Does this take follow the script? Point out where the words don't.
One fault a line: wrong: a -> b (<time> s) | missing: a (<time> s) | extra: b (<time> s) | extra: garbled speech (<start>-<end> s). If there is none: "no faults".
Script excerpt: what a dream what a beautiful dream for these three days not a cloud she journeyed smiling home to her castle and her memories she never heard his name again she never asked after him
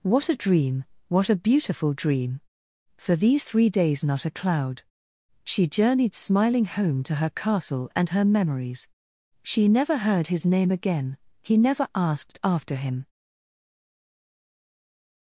wrong: she -> he (11.4 s)